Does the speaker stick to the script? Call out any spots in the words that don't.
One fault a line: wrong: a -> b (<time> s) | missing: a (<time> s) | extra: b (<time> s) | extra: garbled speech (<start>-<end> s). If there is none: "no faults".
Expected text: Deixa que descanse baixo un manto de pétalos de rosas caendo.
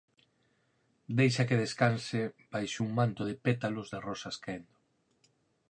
no faults